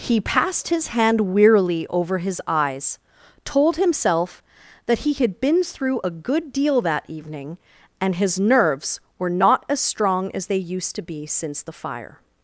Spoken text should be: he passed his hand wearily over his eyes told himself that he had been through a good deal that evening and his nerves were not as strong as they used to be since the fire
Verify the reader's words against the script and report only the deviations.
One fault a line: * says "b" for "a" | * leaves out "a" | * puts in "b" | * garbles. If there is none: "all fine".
all fine